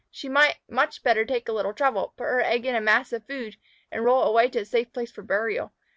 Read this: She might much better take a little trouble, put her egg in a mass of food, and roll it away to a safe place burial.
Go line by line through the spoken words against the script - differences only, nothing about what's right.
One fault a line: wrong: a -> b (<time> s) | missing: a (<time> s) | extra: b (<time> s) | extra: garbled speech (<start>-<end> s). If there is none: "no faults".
extra: for (5.1 s)